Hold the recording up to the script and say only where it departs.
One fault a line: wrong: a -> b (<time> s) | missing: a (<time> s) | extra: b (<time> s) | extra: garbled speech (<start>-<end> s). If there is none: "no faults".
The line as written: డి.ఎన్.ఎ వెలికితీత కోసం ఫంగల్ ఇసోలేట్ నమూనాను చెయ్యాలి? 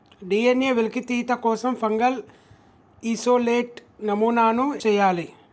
no faults